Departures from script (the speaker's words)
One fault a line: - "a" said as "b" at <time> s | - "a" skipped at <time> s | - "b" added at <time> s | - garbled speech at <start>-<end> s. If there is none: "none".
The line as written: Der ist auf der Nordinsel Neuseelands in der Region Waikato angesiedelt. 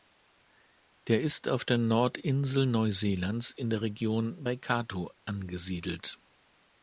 none